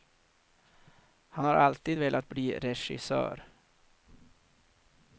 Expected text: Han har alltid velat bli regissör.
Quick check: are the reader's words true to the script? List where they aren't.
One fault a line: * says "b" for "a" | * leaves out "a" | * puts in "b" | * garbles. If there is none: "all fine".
all fine